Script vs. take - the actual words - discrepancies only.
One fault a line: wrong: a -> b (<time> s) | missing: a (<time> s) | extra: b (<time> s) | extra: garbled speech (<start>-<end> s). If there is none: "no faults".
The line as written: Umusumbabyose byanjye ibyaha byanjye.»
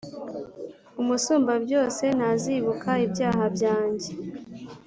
wrong: byanjye -> ntazibuka (2.2 s)